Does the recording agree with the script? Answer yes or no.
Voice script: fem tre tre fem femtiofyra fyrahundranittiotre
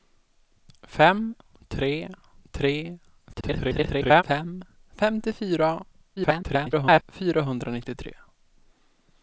no